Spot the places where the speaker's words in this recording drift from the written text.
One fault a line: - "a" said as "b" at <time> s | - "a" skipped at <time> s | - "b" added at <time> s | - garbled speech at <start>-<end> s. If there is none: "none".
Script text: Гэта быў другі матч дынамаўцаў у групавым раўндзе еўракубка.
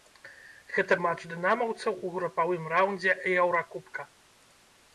- "быў другі" skipped at 0.9 s